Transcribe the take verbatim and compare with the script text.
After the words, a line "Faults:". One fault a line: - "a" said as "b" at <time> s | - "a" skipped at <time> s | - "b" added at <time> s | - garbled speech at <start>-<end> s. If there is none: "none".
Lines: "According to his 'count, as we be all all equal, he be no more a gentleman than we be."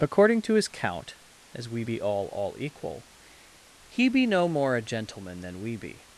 "According to his 'count, as we be all all equal, he be no more a gentleman than we be."
Faults:
none